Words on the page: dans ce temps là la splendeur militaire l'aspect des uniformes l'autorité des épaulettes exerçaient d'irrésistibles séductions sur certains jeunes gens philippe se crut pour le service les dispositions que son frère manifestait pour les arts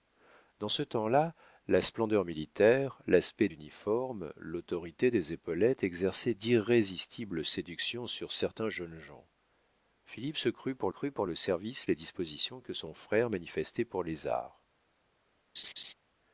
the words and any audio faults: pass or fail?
fail